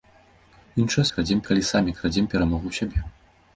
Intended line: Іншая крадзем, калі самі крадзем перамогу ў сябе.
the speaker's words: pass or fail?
pass